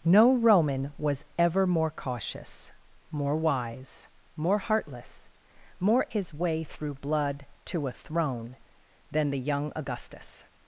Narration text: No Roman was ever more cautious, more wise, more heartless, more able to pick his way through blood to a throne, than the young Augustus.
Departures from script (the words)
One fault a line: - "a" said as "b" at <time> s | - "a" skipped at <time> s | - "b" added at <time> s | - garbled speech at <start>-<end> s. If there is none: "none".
- "able to pick" skipped at 6.1 s